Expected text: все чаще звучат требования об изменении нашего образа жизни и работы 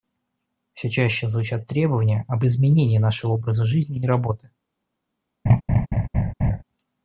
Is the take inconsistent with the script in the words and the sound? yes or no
yes